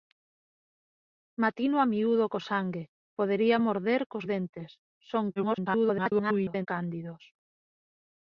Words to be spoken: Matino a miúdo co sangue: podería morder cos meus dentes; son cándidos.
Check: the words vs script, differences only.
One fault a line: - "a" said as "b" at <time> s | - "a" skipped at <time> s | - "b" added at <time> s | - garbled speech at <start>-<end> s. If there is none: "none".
- "meus" skipped at 4.2 s
- garbled speech at 5.4-6.7 s